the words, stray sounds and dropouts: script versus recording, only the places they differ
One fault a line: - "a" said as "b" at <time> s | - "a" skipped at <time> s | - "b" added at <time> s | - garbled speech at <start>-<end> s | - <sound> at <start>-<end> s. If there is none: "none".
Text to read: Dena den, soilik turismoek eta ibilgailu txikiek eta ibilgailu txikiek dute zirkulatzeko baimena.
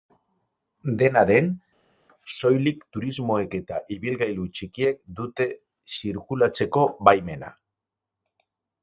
- "eta ibilgailu txikiek" skipped at 5.0 s